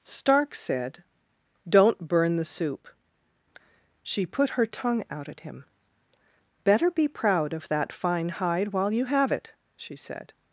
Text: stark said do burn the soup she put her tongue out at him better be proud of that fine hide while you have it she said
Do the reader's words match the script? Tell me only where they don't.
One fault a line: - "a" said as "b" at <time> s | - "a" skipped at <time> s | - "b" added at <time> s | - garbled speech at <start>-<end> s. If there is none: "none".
- "do" said as "don't" at 1.7 s